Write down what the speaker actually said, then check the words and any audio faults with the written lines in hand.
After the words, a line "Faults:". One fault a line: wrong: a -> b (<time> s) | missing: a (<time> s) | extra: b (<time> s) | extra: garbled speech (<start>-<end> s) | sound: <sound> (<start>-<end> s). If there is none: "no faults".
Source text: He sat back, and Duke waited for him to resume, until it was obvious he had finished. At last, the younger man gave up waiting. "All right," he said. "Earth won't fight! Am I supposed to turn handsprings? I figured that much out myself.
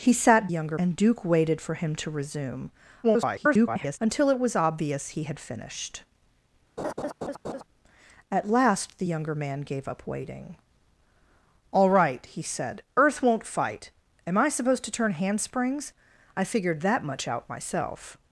He sat younger, and Duke waited for him to resume, [garbled] until it was obvious he had finished. At last, the younger man gave up waiting. "All right," he said. "Earth won't fight! Am I supposed to turn handsprings? I figured that much out myself.
Faults:
wrong: back -> younger (0.5 s)
extra: garbled speech (3.0-4.0 s)
sound: laugh (6.8-7.6 s)